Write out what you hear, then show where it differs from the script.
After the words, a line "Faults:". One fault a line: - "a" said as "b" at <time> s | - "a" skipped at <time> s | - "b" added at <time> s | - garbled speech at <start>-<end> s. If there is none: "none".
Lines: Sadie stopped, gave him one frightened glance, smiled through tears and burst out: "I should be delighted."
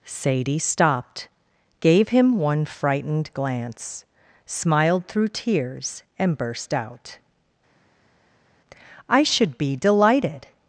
Sadie stopped, gave him one frightened glance, smiled through tears and burst out: "I should be delighted."
Faults:
none